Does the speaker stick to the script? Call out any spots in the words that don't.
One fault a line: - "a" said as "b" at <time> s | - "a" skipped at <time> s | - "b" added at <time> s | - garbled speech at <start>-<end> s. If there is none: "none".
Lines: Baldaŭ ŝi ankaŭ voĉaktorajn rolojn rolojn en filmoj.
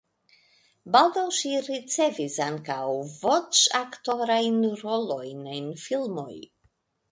- "ricevis" added at 1.7 s
- "rolojn" skipped at 5.5 s